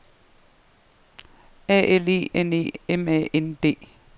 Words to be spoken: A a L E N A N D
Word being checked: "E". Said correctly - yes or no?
yes